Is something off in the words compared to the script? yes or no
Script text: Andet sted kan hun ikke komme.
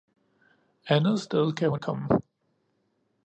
yes